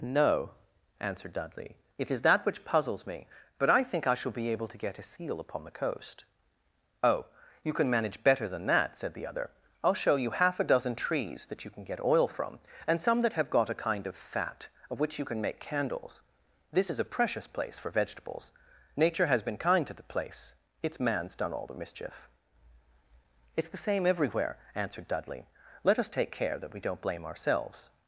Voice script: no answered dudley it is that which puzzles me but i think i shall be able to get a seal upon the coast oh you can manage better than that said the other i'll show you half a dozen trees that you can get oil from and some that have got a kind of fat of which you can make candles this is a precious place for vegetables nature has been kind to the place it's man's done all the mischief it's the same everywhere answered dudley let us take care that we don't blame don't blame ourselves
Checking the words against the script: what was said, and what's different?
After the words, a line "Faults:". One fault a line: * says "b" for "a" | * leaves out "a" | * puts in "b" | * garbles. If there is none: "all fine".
no answered dudley it is that which puzzles me but i think i shall be able to get a seal upon the coast oh you can manage better than that said the other i'll show you half a dozen trees that you can get oil from and some that have got a kind of fat of which you can make candles this is a precious place for vegetables nature has been kind to the place it's man's done all the mischief it's the same everywhere answered dudley let us take care that we don't blame ourselves
Faults:
* leaves out "don't blame"